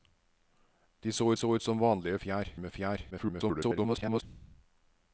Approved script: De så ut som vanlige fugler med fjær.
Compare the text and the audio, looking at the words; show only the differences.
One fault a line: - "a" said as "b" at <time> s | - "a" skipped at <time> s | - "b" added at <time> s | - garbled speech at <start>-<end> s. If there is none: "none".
- "så" added at 1.3 s
- "fugler" said as "fjær" at 2.2 s
- garbled speech at 3.1-4.2 s